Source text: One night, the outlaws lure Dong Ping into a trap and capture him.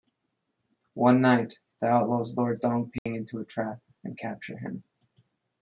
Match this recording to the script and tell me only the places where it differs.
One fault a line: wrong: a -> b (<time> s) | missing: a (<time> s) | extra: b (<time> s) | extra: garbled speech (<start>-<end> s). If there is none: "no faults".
no faults